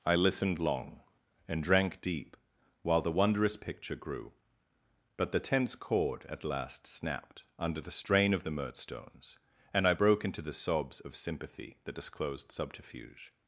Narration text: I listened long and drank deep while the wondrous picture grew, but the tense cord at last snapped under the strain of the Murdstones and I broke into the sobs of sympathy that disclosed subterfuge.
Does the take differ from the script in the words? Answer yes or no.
no